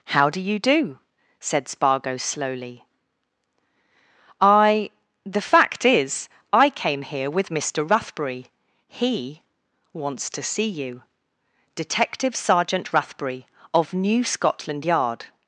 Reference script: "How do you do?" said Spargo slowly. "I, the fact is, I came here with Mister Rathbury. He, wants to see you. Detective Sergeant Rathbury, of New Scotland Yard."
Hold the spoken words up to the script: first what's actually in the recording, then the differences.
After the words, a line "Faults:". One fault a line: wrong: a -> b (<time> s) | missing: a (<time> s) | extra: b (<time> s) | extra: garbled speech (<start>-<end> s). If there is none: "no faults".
"How do you do?" said Spargo slowly. "I, the fact is, I came here with Mister Rathbury. He, wants to see you. Detective Sergeant Rathbury, of New Scotland Yard."
Faults:
no faults